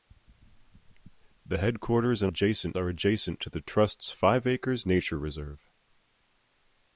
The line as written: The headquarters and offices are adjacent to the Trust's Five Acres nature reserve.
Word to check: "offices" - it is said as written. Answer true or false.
false